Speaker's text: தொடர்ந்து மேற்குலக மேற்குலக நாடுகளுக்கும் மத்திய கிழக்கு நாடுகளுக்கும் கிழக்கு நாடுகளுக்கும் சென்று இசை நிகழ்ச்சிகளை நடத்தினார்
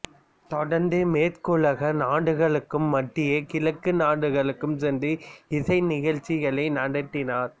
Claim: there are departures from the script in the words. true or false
true